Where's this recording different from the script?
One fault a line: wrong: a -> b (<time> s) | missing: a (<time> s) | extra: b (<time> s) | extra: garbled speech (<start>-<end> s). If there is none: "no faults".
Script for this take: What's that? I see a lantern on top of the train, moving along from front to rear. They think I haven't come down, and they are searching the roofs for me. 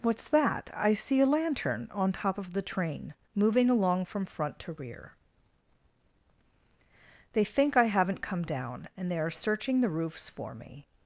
no faults